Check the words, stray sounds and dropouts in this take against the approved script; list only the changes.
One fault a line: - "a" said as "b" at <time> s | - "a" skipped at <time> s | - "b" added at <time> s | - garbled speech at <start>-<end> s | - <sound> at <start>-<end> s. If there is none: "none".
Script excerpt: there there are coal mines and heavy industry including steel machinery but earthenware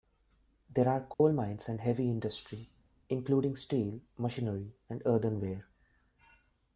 - "there" skipped at 0.9 s
- dropout at 1.1-1.2 s
- "but" said as "and" at 4.9 s